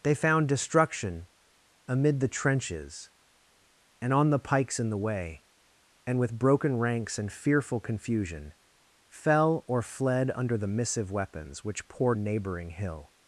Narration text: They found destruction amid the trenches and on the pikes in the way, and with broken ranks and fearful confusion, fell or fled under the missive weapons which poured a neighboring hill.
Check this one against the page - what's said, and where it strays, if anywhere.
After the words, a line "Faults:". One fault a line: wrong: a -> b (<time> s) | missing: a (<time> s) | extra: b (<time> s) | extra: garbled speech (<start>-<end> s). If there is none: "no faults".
They found destruction amid the trenches and on the pikes in the way, and with broken ranks and fearful confusion, fell or fled under the missive weapons which poured a neighboring hill.
Faults:
no faults